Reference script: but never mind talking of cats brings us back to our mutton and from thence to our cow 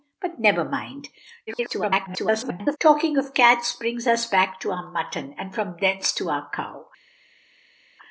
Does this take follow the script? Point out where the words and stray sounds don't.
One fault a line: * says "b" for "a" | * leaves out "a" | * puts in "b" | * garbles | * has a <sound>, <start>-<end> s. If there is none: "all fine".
* garbles